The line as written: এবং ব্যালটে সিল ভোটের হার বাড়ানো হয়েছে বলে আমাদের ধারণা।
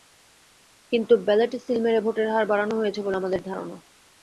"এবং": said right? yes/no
no